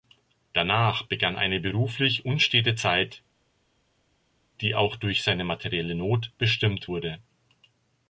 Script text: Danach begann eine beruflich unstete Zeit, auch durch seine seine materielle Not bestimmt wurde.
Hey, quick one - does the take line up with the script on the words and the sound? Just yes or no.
no